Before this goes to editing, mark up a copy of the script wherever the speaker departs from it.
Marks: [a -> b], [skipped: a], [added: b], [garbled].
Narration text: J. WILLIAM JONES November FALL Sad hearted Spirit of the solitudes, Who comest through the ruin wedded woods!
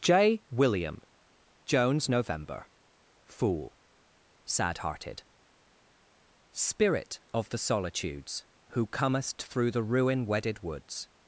J. WILLIAM JONES November [FALL -> Fool] Sad hearted Spirit of the solitudes, Who comest through the ruin wedded woods!